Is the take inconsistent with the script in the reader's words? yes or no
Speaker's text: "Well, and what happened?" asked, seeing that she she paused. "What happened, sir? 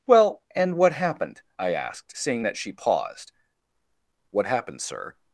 yes